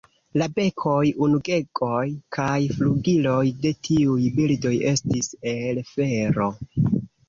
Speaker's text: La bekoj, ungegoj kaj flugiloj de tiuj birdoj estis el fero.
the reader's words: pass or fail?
pass